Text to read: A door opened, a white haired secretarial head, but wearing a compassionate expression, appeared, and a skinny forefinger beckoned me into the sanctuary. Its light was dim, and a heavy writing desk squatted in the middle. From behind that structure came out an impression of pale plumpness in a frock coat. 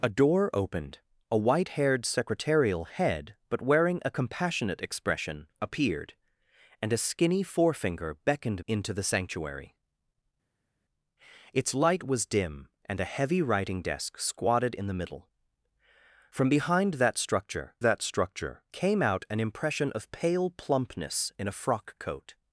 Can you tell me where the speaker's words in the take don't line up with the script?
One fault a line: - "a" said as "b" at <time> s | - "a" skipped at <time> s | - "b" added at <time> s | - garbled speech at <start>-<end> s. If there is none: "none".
- "me" skipped at 8.7 s
- "that structure" added at 17.8 s